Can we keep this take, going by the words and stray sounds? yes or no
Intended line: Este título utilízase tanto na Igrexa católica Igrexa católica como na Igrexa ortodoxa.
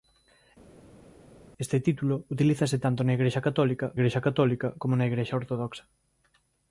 yes